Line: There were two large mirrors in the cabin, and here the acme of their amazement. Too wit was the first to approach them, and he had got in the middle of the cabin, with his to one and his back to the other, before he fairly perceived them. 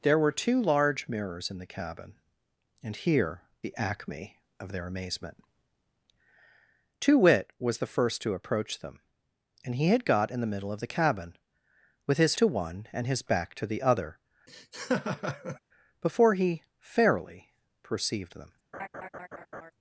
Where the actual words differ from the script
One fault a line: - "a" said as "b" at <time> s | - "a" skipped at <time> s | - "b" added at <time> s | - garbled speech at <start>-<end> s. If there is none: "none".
none